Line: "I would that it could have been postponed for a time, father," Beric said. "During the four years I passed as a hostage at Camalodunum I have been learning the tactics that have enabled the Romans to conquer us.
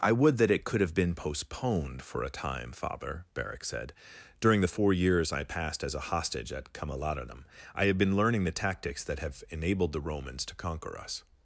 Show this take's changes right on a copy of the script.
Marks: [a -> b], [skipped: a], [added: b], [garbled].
"I would that it could have been postponed for a time, father," Beric said. "During the four years I passed as a hostage at Camalodunum I have been learning the tactics that have enabled the Romans to conquer us.